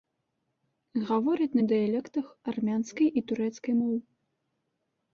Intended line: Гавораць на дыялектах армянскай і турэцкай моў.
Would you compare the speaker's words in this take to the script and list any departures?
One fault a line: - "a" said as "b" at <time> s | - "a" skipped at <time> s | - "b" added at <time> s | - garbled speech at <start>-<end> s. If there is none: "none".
none